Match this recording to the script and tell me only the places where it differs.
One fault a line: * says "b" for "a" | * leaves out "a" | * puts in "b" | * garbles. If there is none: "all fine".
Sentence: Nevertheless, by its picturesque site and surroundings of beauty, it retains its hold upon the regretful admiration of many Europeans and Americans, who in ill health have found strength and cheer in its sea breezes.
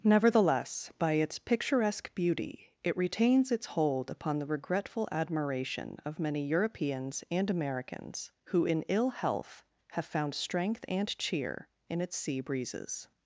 * leaves out "site and surroundings of"